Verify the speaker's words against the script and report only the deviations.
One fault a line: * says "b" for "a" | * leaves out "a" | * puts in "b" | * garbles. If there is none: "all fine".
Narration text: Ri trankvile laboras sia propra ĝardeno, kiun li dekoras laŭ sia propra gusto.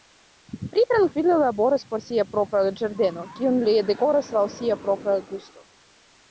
* puts in "por"